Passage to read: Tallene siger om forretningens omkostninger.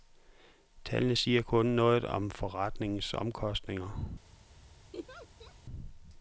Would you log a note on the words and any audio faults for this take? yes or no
yes